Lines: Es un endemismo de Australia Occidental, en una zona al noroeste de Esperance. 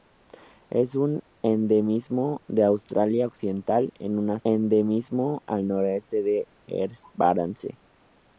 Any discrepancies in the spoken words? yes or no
yes